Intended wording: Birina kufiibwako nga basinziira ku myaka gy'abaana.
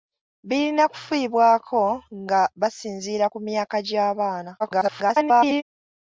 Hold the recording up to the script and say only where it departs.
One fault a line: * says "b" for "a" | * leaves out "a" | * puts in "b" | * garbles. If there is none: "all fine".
* garbles